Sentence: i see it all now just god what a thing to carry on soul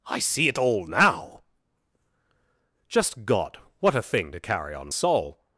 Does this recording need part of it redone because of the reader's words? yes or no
no